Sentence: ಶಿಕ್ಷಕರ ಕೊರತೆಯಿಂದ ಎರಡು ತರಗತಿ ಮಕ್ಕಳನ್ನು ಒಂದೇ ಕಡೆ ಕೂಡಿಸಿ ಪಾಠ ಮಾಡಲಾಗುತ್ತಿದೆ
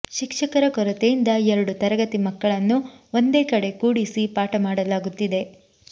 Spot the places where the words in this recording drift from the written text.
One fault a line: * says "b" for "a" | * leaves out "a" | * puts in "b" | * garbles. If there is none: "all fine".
all fine